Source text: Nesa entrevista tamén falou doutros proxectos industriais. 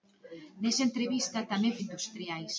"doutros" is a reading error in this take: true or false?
true